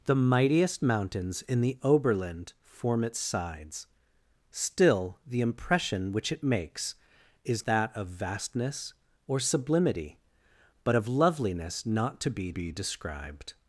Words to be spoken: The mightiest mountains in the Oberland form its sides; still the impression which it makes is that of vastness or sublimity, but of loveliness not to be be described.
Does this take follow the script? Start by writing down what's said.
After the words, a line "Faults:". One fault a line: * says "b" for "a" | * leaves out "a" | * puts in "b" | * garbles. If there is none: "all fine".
The mightiest mountains in the Oberland form its sides; still the impression which it makes is that of vastness or sublimity, but of loveliness not to be be described.
Faults:
all fine